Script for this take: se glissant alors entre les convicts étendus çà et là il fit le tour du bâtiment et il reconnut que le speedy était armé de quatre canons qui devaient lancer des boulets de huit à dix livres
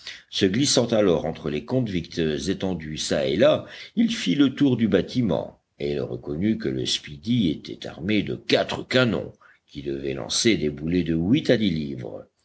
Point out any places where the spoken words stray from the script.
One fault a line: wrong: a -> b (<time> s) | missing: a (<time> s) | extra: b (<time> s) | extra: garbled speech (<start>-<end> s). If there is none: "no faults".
no faults